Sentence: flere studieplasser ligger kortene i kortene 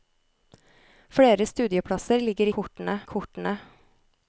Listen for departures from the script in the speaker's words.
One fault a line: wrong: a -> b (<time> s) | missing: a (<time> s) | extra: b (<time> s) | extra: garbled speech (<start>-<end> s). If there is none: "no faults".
no faults